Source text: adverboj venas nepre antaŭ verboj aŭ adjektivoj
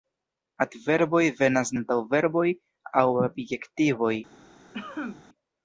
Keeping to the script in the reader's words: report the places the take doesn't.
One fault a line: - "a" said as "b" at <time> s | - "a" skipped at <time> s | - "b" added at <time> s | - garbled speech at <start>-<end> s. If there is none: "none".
- "nepre" skipped at 1.7 s